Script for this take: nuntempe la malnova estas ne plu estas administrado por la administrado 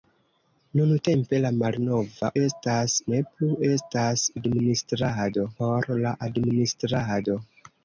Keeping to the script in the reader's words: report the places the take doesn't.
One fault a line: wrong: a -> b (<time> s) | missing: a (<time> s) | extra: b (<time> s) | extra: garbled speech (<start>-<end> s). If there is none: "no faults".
no faults